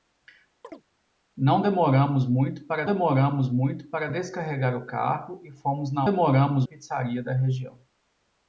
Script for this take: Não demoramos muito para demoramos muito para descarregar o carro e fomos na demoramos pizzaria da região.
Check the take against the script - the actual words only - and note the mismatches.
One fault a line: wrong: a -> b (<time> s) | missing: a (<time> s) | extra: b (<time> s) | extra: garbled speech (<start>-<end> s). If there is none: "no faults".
no faults